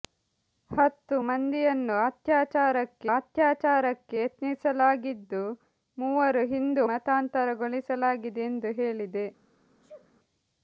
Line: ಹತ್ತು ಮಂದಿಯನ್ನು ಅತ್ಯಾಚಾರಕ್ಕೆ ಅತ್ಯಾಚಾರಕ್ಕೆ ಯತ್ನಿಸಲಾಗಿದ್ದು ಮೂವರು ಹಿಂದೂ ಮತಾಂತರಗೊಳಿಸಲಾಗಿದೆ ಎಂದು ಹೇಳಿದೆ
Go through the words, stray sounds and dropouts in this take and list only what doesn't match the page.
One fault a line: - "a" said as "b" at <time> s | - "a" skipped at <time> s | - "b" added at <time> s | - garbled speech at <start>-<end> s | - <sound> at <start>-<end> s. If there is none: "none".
- sneeze at 9.8-10.1 s